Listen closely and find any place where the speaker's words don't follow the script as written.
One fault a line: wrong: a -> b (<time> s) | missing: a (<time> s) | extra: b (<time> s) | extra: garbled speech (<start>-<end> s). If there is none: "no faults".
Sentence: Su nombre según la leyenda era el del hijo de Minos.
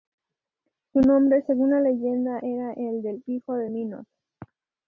no faults